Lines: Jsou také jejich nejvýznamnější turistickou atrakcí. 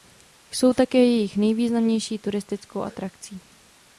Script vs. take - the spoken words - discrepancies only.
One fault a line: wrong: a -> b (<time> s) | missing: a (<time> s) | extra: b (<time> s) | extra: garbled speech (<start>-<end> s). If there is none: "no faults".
no faults